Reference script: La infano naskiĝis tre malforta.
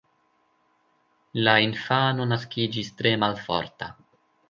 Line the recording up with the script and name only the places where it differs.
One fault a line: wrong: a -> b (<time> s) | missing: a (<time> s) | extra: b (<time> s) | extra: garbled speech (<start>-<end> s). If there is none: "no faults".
no faults